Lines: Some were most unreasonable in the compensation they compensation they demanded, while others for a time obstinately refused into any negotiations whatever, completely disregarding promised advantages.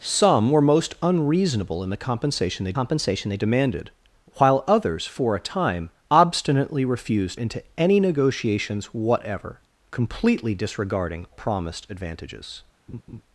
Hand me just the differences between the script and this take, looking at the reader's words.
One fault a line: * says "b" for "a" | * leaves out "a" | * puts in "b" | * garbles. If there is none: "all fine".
all fine